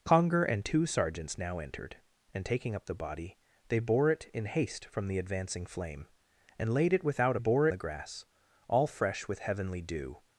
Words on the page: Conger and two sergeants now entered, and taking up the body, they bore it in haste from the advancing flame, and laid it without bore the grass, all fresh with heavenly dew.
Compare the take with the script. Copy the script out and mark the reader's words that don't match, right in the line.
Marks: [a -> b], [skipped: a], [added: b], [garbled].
Conger and two sergeants now entered, and taking up the body, they bore it in haste from the advancing flame, and laid it without bore the grass, all fresh with heavenly dew.